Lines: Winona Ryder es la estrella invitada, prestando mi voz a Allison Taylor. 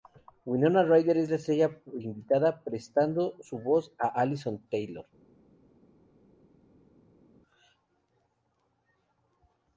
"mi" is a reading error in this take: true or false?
true